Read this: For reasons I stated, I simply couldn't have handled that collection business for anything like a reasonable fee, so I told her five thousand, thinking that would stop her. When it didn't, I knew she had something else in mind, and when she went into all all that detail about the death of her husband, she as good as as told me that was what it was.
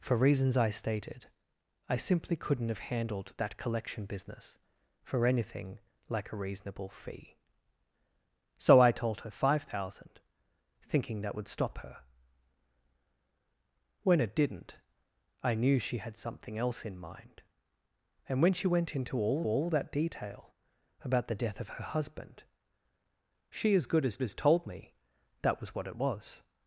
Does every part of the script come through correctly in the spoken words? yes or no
yes